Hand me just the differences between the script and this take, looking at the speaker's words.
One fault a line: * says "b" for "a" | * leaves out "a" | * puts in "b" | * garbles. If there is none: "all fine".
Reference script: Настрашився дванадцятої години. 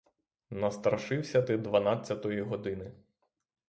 * puts in "ти"